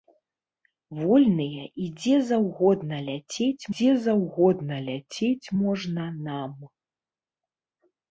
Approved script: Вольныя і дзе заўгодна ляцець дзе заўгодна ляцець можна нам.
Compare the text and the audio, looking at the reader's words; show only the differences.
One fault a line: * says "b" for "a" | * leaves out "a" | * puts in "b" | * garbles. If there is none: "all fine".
all fine